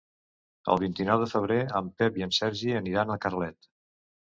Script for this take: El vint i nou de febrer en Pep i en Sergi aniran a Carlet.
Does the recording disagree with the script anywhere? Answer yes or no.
no